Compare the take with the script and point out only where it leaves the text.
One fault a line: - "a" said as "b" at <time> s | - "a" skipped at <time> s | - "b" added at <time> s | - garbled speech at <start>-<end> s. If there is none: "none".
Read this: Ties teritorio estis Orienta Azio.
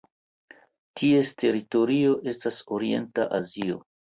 - "estis" said as "estas" at 2.4 s